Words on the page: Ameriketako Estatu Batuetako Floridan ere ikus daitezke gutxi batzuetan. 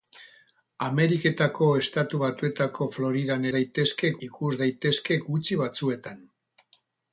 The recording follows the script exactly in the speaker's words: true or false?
false